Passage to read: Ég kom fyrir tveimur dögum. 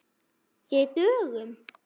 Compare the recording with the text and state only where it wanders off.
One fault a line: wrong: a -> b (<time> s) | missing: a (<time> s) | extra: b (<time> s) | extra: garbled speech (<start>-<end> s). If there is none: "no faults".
missing: kom fyrir tveimur (0.9 s)